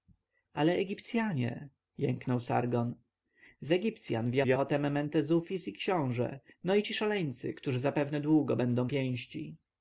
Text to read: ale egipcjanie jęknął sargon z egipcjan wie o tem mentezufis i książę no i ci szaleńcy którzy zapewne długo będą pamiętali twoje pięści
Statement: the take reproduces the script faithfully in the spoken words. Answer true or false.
false